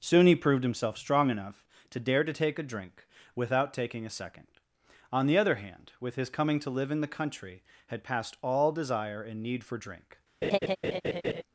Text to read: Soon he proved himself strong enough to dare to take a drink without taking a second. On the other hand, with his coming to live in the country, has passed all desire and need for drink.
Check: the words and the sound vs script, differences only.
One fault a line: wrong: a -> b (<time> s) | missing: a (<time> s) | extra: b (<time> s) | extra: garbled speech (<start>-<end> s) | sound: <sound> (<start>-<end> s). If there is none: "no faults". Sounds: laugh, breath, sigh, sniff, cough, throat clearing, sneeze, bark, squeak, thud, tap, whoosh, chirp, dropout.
wrong: has -> had (7.9 s)
sound: laugh (10.4-11.4 s)